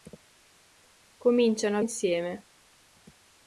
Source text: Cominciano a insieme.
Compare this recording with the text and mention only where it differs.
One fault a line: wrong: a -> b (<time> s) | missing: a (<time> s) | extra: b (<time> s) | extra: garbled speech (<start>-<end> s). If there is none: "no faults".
no faults